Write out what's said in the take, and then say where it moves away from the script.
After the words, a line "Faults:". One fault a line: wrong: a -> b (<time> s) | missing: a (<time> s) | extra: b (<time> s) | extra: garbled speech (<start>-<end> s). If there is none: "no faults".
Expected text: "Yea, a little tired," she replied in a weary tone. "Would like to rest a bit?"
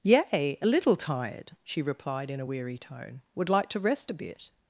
"Yea, a little tired," she replied in a weary tone. "Would like to rest a bit?"
Faults:
no faults